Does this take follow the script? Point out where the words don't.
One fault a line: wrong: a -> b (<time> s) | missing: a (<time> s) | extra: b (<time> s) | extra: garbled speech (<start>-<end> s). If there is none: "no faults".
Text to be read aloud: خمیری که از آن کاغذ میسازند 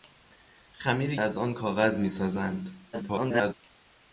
missing: که (1.2 s)
extra: garbled speech (2.9-3.5 s)